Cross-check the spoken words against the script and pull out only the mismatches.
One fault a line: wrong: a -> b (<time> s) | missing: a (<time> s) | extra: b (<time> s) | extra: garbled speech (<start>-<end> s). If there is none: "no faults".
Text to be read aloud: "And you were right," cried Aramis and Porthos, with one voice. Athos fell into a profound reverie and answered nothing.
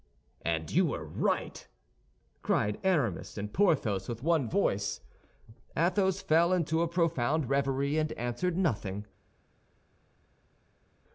no faults